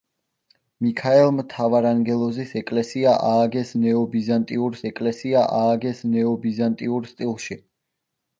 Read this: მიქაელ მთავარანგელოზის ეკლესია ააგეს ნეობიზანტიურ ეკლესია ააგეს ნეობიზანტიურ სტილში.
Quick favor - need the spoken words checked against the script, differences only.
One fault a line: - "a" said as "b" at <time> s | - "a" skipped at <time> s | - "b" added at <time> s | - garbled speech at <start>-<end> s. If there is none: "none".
none